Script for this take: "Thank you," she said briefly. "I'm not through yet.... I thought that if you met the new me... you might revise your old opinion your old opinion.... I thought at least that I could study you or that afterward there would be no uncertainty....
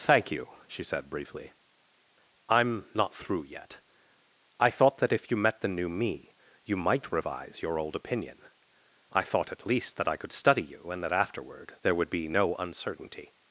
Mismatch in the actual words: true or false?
true